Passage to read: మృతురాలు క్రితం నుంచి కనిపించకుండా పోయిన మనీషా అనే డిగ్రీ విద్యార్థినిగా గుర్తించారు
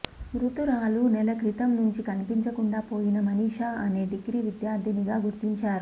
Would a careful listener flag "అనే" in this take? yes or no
no